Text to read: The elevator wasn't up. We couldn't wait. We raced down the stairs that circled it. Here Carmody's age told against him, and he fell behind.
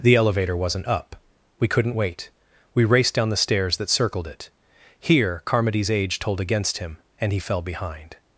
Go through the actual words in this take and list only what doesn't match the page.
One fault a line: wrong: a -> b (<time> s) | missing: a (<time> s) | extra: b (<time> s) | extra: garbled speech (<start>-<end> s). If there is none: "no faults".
no faults